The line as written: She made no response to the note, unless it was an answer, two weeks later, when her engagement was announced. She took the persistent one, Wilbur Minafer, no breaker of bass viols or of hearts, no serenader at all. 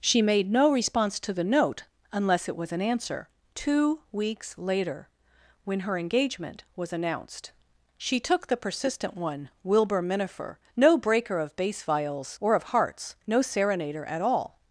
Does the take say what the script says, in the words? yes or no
yes